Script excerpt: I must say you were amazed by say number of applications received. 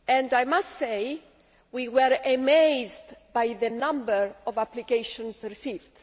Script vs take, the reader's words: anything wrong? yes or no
yes